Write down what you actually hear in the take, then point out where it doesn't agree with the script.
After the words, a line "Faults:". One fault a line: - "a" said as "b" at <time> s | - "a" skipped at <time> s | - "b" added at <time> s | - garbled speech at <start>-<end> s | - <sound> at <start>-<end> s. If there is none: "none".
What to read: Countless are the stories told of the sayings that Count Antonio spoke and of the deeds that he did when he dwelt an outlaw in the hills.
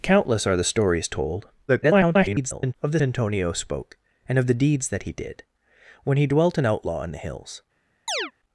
Countless are the stories told [garbled] of the Antonio spoke and of the deeds that he did when he dwelt an outlaw in the hills.
Faults:
- garbled speech at 1.7-2.7 s
- "sayings that Count" skipped at 3.0 s
- chirp at 8.1-8.3 s